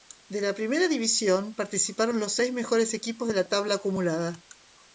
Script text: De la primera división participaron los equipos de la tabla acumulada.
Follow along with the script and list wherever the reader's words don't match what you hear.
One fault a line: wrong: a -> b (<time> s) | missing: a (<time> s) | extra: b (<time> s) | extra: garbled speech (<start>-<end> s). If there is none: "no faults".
extra: seis mejores (2.3 s)